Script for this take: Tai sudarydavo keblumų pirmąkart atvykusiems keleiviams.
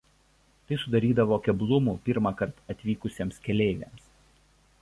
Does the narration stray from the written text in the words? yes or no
no